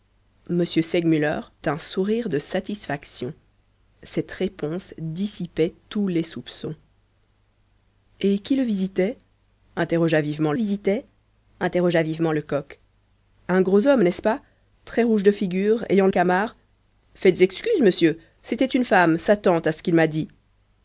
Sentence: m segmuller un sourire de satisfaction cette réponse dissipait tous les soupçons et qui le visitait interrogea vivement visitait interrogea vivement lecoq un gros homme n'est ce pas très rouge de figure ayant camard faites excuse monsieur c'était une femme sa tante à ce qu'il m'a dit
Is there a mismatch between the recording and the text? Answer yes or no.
no